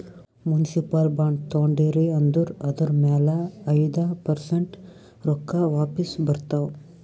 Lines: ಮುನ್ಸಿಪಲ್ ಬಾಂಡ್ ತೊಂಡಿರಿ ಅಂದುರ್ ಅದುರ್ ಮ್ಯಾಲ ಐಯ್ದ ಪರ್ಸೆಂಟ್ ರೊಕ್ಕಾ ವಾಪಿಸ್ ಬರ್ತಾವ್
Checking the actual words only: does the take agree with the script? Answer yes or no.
yes